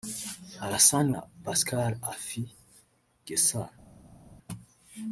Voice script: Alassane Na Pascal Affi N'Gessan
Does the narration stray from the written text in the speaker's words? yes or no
no